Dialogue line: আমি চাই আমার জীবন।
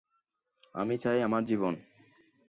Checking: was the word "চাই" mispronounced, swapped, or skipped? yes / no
no